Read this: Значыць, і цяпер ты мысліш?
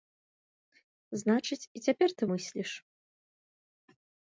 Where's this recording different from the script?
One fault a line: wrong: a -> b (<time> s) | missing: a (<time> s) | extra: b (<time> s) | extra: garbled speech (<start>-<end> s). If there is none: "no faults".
no faults